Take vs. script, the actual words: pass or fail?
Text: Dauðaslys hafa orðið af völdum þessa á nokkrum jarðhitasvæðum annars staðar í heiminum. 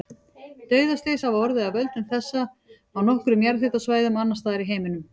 pass